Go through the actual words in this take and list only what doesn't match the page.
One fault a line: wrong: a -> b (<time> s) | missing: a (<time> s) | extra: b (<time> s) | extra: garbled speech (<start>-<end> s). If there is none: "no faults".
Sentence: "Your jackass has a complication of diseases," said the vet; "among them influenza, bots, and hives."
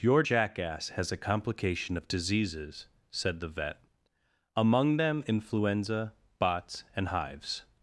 no faults